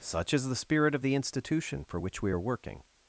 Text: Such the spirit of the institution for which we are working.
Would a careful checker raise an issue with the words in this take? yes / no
yes